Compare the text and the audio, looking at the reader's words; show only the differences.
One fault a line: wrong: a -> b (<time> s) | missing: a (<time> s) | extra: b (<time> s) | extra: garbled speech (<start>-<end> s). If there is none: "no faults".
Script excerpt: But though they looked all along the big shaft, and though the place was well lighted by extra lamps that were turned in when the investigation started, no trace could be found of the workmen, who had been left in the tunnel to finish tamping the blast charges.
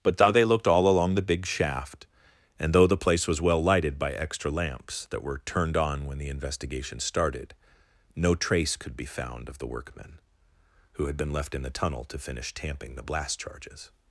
wrong: in -> on (5.8 s)